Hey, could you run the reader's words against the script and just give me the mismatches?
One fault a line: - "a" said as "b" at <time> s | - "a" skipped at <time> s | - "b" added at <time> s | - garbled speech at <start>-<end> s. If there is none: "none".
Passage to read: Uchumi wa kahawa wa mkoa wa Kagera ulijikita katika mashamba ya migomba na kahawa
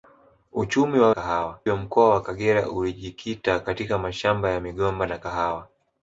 none